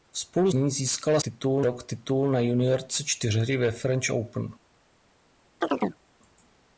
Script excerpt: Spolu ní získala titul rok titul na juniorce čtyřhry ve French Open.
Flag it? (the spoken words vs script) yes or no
no